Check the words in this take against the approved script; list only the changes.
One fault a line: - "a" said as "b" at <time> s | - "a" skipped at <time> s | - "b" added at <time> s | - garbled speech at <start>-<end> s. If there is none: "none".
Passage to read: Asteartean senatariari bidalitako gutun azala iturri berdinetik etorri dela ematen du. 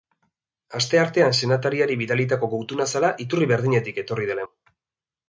- "ematen" skipped at 4.5 s